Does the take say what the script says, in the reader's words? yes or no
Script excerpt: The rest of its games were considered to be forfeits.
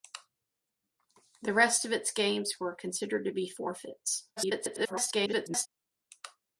no